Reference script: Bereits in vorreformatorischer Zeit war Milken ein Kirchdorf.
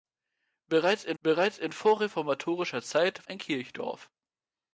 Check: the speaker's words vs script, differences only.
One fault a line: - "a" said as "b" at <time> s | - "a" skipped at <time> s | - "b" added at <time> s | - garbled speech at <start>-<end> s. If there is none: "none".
- "bereits in" added at 1.2 s
- "war Milken" skipped at 3.3 s